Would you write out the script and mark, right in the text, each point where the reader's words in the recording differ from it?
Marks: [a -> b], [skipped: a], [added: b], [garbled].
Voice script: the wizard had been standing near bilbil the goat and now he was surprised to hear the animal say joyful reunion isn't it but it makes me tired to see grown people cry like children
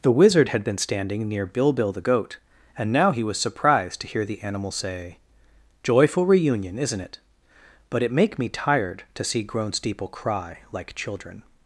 the wizard had been standing near bilbil the goat and now he was surprised to hear the animal say joyful reunion isn't it but it [makes -> make] me tired to see grown [people -> steeple] cry like children